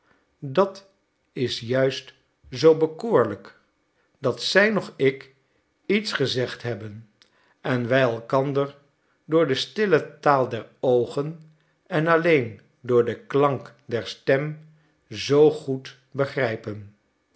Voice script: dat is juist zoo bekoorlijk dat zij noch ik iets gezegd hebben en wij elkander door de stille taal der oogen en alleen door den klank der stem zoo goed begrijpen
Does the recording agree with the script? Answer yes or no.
yes